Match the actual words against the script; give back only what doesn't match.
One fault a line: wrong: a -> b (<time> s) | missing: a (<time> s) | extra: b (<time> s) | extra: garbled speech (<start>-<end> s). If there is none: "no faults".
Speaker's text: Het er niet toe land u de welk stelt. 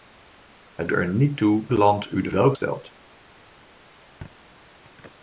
no faults